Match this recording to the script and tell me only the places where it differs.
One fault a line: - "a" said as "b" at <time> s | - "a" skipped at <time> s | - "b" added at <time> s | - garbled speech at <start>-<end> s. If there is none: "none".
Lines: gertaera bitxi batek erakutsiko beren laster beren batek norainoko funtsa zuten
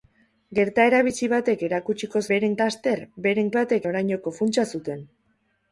none